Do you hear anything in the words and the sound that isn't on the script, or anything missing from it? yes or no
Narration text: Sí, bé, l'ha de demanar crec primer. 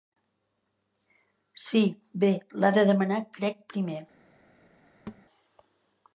yes